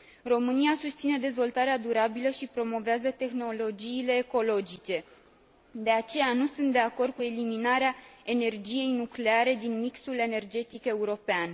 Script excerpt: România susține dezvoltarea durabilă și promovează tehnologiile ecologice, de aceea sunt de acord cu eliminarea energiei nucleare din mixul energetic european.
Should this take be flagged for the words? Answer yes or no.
yes